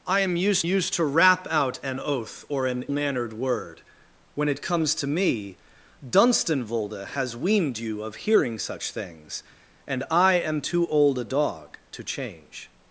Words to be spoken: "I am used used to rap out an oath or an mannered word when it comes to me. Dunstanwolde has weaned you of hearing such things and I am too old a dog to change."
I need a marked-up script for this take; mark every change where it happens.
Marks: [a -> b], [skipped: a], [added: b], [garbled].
"I am used used to rap out an oath or an mannered word when it comes to me. Dunstanwolde has weaned you of hearing such things and I am too old a dog to change."